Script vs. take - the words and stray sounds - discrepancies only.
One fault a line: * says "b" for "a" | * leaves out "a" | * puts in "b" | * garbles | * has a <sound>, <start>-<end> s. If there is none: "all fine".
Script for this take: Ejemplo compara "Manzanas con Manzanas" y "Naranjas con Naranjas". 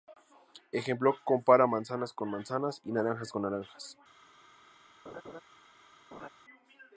* has a laugh, 5.1-5.4 s
* has a laugh, 6.1-6.3 s